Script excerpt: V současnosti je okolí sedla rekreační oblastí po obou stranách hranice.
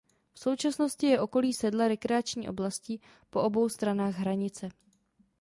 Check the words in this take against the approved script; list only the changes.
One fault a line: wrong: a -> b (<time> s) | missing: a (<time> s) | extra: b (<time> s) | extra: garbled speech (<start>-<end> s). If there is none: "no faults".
no faults